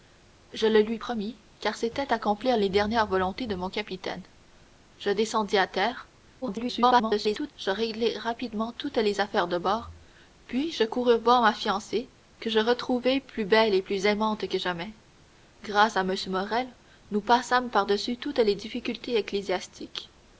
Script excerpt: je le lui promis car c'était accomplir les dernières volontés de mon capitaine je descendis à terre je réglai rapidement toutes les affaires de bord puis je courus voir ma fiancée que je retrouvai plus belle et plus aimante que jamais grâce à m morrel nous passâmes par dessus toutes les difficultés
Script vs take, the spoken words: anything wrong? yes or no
yes